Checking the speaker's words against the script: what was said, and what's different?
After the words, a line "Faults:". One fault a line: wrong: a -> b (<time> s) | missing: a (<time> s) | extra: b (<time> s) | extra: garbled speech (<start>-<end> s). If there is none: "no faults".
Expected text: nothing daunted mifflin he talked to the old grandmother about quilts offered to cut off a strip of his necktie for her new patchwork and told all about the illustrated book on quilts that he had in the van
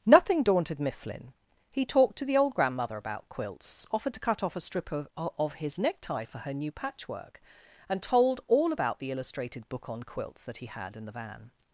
nothing daunted mifflin he talked to the old grandmother about quilts offered to cut off a strip of of his necktie for her new patchwork and told all about the illustrated book on quilts that he had in the van
Faults:
extra: of (5.2 s)